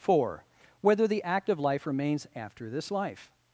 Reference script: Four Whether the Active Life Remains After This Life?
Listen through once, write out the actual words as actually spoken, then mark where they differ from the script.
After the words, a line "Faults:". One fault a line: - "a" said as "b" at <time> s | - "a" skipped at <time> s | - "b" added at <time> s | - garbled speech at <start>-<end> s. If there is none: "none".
Four Whether the Active Life Remains After This Life?
Faults:
none